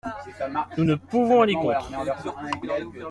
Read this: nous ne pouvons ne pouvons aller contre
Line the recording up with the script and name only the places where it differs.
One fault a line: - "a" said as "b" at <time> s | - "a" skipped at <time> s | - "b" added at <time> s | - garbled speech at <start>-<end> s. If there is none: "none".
- "ne pouvons" skipped at 1.4 s